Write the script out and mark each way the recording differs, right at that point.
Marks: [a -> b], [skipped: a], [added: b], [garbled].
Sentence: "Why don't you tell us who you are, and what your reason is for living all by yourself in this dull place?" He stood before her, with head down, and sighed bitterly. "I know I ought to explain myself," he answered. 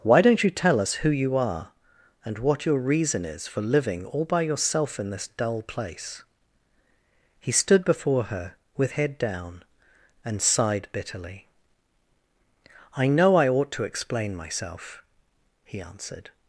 "Why don't you tell us who you are, and what your reason is for living all by yourself in this dull place?" He stood before her, with head down, and sighed bitterly. "I know I ought to explain myself," he answered.